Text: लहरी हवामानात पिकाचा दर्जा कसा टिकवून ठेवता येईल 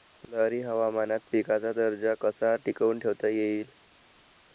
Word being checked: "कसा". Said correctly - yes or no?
yes